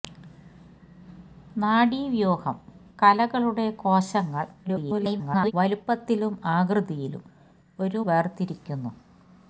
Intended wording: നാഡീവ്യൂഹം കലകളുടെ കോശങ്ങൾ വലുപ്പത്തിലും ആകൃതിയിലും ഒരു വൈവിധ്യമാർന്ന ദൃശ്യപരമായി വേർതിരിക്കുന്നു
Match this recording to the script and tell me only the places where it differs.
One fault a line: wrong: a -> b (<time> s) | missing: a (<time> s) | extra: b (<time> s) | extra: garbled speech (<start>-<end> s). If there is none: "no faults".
extra: garbled speech (4.6-5.5 s)
missing: വൈവിധ്യമാർന്ന ദൃശ്യപരമായി (8.0 s)